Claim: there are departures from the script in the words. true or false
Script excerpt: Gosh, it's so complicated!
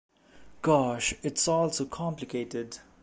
true